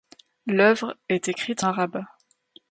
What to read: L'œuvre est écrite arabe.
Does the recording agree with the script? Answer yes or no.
yes